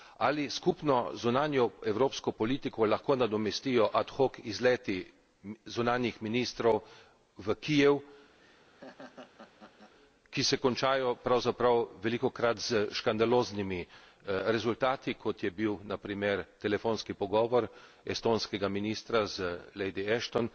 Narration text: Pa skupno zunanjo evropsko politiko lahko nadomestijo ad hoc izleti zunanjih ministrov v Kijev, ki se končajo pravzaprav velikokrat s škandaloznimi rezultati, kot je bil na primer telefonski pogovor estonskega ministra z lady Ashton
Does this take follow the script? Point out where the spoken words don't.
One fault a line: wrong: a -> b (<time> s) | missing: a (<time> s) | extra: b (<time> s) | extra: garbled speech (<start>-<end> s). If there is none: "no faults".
wrong: Pa -> Ali (0.2 s)